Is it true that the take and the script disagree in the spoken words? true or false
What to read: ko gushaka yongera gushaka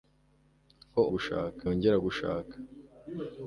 false